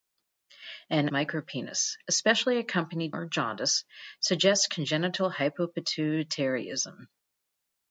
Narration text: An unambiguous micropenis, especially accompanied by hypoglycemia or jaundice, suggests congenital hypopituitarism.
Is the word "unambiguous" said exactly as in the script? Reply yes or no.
no